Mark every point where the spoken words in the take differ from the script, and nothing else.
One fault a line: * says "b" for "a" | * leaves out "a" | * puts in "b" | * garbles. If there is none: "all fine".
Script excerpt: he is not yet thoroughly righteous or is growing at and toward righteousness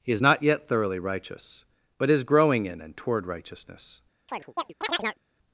* says "but" for "or"
* says "in" for "at"